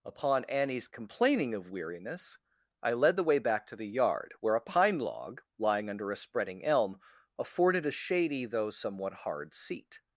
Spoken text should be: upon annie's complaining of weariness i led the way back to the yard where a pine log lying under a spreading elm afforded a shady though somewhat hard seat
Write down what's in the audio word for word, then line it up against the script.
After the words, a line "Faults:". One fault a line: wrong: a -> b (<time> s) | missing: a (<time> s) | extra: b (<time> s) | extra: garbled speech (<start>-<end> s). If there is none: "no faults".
upon annie's complaining of weariness i led the way back to the yard where a pine log lying under a spreading elm afforded a shady though somewhat hard seat
Faults:
no faults